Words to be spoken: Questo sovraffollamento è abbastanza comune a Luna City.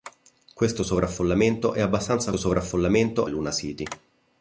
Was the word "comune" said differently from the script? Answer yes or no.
yes